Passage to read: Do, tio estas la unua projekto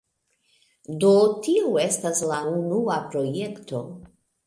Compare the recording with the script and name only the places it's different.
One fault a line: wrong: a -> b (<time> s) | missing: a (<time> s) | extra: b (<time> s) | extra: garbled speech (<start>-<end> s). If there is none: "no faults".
no faults